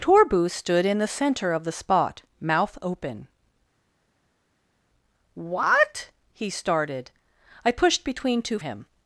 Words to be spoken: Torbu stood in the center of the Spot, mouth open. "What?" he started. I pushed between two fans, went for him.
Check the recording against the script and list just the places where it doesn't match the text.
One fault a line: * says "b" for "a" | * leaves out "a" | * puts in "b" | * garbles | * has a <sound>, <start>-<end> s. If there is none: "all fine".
* leaves out "fans went for"